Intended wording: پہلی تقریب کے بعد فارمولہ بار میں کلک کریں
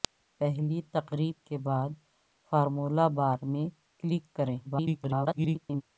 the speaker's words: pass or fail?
fail